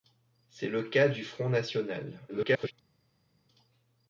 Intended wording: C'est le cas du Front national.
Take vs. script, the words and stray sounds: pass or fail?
fail